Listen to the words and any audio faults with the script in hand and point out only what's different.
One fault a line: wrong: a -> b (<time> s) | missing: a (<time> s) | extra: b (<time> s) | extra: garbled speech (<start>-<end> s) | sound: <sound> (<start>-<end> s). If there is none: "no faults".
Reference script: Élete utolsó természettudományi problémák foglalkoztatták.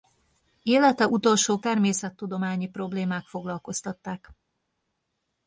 no faults